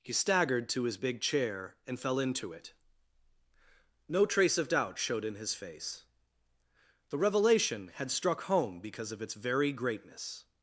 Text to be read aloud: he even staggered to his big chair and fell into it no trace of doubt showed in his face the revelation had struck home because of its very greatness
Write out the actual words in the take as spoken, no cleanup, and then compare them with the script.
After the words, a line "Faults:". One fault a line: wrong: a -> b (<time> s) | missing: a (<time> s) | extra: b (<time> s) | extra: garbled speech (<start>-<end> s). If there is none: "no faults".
he staggered to his big chair and fell into it no trace of doubt showed in his face the revelation had struck home because of its very greatness
Faults:
missing: even (0.1 s)